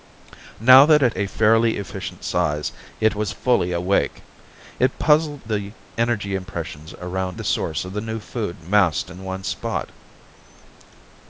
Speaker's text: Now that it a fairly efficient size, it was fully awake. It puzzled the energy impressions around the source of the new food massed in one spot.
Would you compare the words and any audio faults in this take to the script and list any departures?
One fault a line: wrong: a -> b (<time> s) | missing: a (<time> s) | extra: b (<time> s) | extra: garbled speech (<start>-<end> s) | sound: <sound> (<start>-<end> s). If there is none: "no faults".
no faults